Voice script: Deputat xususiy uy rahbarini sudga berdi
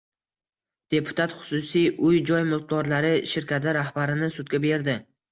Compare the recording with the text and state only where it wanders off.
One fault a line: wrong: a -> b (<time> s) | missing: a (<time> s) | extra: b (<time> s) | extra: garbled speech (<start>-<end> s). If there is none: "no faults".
extra: joy mulkdorlari shirkati (2.3 s)